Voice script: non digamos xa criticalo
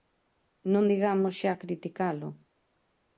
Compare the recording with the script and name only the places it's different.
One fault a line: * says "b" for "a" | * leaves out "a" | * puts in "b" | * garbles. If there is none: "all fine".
all fine